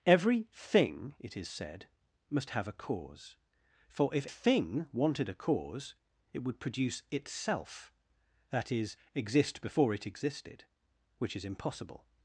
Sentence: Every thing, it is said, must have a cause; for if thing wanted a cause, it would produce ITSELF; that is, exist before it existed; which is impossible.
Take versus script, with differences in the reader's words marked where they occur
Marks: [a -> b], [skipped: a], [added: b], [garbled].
Every thing, it is said, must have a cause; for if thing wanted a cause, it would produce ITSELF; that is, exist before it existed; which is impossible.